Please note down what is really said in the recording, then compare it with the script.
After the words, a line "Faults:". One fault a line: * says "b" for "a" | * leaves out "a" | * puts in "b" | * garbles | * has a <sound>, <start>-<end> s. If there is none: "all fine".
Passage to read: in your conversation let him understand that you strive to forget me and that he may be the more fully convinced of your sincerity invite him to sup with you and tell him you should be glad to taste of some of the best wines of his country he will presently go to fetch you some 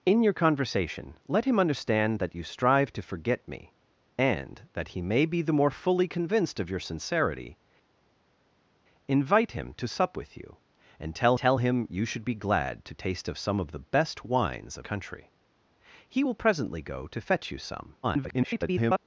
in your conversation let him understand that you strive to forget me and that he may be the more fully convinced of your sincerity invite him to sup with you and tell tell him you should be glad to taste of some of the best wines of country he will presently go to fetch you some [garbled]
Faults:
* puts in "tell"
* leaves out "his"
* garbles